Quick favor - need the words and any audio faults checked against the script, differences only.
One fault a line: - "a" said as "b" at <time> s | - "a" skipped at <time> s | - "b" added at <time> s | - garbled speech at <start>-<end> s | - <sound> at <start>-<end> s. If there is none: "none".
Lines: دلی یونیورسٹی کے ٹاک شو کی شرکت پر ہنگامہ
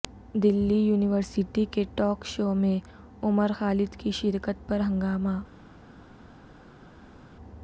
- "میں عمر خالد" added at 2.5 s